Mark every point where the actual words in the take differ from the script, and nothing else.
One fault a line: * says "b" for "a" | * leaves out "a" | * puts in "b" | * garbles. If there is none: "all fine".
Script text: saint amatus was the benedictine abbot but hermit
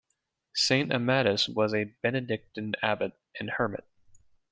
* says "a" for "the"
* says "and" for "but"